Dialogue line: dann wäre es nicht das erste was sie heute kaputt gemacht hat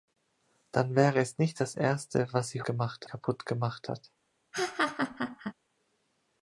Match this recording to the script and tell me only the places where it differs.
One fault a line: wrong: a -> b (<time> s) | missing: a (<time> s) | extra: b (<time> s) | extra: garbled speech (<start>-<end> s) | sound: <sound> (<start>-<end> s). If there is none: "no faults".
wrong: heute -> gemacht (2.6 s)
sound: laugh (4.5-5.5 s)